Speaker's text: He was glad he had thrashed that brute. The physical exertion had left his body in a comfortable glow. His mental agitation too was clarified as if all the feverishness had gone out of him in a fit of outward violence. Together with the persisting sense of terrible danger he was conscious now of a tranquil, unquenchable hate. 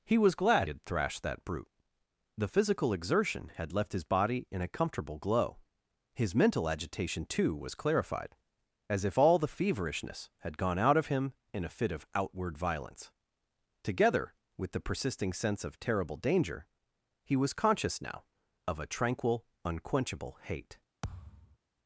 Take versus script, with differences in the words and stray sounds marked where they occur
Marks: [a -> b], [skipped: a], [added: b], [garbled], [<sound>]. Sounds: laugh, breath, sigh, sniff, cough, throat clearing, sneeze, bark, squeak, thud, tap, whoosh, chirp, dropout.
He was glad [skipped: he] had thrashed that brute. The physical exertion had left his body in a comfortable glow. His mental agitation too was clarified as if all the feverishness had gone out of him in a fit of outward violence. Together with the persisting sense of terrible danger he was conscious now of a tranquil, unquenchable hate. [thud]